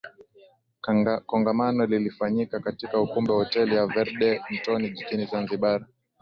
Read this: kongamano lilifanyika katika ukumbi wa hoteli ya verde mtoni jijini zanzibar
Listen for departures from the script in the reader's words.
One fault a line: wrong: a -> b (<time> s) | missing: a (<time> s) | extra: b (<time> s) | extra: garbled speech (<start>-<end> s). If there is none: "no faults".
no faults